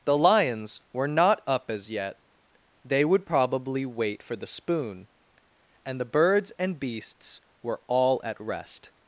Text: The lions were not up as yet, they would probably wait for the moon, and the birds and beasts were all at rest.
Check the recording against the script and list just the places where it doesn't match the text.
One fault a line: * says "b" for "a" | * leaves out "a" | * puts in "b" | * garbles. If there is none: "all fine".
* says "spoon" for "moon"